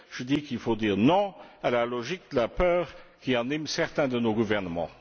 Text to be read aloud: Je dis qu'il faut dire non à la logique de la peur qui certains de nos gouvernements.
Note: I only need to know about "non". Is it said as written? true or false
true